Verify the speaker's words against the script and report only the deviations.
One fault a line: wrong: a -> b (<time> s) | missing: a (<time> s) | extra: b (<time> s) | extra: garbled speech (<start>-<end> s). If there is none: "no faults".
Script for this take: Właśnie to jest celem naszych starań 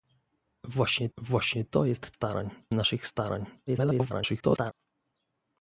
extra: właśnie (1.2 s)
wrong: celem -> starań (2.1 s)
extra: garbled speech (3.7-4.7 s)